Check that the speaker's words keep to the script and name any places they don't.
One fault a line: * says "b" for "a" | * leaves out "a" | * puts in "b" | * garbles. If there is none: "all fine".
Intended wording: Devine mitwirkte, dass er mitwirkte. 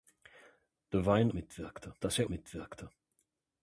all fine